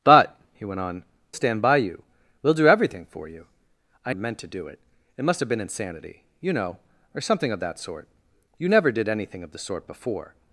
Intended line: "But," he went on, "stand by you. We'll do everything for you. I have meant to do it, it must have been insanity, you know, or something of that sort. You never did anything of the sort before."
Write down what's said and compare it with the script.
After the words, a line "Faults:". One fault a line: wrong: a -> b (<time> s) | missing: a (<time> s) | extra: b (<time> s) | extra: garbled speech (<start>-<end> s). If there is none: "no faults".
"But," he went on, "stand by you. We'll do everything for you. I have meant to do it, it must have been insanity, you know, or something of that sort. You never did anything of the sort before."
Faults:
no faults